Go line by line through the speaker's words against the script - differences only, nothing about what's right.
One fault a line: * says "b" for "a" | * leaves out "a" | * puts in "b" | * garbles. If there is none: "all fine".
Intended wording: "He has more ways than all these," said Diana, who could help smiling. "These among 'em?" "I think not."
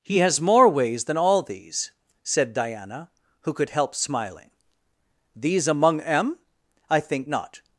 all fine